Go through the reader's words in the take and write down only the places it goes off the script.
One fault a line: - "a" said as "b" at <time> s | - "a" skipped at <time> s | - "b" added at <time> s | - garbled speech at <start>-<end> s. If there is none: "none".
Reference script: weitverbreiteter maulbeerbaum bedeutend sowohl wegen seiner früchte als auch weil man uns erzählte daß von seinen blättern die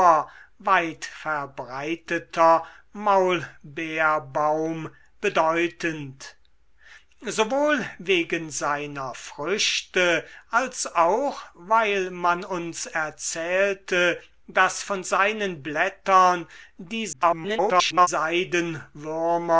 - garbled speech at 17.1-18.1 s